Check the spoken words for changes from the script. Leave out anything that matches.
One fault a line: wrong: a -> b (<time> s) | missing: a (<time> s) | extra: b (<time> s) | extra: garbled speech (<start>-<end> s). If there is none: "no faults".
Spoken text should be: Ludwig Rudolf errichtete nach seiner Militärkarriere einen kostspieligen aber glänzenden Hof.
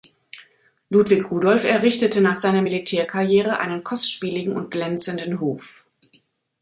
wrong: aber -> und (4.5 s)